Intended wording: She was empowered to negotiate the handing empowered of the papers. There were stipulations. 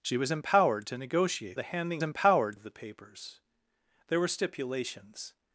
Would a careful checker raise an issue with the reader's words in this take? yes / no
no